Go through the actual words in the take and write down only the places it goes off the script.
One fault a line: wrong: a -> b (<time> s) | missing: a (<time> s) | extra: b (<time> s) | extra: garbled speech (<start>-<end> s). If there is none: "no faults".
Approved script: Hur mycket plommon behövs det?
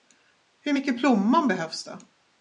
no faults